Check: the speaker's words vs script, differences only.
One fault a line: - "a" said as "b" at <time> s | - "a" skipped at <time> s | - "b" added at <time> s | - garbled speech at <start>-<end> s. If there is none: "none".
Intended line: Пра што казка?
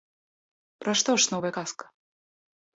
- "ж новая" added at 1.2 s